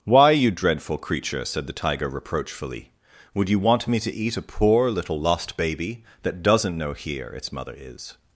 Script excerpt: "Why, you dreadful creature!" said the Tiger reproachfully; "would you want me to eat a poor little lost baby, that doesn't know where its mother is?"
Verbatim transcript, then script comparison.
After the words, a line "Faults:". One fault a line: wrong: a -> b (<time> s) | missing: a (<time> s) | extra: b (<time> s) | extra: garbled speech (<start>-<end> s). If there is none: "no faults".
"Why, you dreadful creature!" said the Tiger reproachfully; "would you want me to eat a poor little lost baby, that doesn't know here its mother is?"
Faults:
wrong: where -> here (6.9 s)